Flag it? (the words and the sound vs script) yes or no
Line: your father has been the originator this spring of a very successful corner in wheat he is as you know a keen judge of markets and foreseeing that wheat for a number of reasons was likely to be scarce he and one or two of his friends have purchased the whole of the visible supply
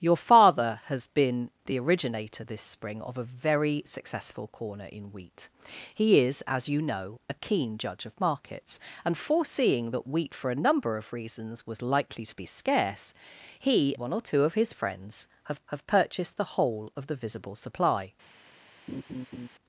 yes